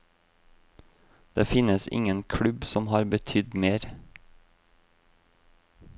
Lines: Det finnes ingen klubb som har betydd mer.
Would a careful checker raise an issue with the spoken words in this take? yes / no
no